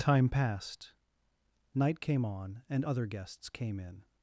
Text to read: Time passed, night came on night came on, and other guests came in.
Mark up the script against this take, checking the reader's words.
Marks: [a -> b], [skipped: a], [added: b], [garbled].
Time passed, night came on [skipped: night came on,] and other guests came in.